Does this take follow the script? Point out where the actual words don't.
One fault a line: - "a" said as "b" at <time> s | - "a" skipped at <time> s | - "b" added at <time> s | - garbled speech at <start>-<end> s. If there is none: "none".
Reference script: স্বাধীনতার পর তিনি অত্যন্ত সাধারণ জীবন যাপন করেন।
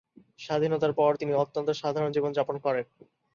none